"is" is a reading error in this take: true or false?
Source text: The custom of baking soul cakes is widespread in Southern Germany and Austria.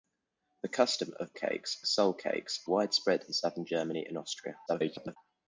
true